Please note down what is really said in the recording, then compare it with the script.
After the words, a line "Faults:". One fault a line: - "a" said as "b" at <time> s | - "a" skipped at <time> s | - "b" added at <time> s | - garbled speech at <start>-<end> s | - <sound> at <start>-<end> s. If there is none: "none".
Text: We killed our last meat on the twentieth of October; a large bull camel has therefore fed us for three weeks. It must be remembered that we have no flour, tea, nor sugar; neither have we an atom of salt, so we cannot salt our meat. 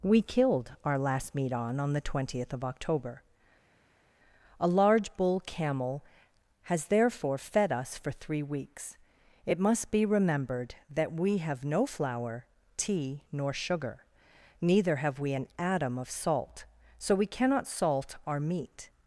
We killed our last meat on on the twentieth of October; a large bull camel has therefore fed us for three weeks. It must be remembered that we have no flour, tea, nor sugar; neither have we an atom of salt, so we cannot salt our meat.
Faults:
- "on" added at 1.8 s